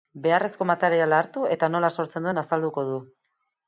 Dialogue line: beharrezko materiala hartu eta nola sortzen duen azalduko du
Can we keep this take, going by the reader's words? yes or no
yes